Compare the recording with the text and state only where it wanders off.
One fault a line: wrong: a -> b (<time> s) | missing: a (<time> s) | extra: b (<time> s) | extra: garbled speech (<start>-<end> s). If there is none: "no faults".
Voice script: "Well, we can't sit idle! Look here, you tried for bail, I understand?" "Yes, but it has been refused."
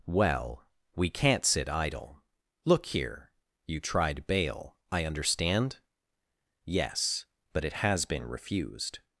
missing: for (4.2 s)